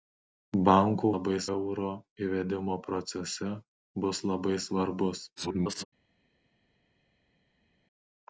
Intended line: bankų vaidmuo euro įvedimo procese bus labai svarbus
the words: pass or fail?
fail